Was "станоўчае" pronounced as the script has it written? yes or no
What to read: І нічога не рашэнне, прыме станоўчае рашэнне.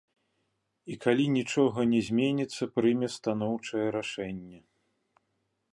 yes